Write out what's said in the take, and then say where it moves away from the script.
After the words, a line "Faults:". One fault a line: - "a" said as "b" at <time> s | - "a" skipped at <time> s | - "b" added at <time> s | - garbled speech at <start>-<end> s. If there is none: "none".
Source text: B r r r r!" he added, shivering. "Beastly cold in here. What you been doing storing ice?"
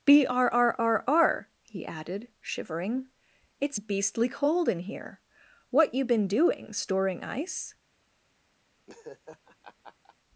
B r r r r!" he added, shivering. "It's beastly cold in here. What you been doing storing ice?"
Faults:
- "It's" added at 3.6 s